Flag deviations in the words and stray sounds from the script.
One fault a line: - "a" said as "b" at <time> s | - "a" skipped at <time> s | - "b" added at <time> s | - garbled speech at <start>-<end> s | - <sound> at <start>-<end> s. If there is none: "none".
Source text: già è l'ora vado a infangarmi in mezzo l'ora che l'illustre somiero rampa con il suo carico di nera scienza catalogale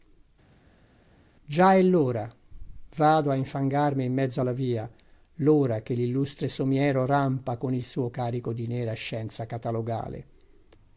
- "alla via" added at 4.4 s